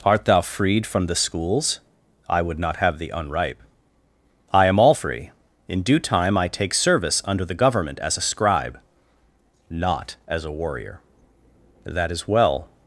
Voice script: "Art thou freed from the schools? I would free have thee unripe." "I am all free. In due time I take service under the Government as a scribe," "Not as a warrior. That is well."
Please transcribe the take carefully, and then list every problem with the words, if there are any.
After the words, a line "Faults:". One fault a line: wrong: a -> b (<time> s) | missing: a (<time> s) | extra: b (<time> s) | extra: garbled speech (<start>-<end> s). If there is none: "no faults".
"Art thou freed from the schools? I would not have thee unripe." "I am all free. In due time I take service under the Government as a scribe," "Not as a warrior. That is well."
Faults:
wrong: free -> not (2.6 s)